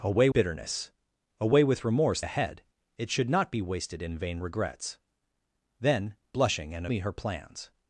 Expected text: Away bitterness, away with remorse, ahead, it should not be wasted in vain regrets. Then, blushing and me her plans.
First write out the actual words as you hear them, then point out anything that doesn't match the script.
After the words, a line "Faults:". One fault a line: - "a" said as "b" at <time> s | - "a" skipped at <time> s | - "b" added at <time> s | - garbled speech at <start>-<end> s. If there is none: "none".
Away bitterness, away with remorse, ahead, it should not be wasted in vain regrets. Then, blushing and me her plans.
Faults:
none